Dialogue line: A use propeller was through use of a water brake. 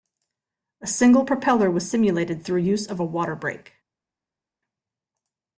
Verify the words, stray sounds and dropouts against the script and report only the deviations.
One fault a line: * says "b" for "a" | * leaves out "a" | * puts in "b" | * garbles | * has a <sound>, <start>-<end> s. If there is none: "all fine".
* says "single" for "use"
* puts in "simulated"